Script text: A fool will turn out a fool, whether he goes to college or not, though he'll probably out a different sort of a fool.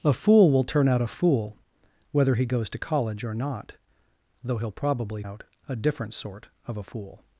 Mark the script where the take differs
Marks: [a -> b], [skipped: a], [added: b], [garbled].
A fool will turn out a fool, whether he goes to college or not, though he'll probably out a different sort of a fool.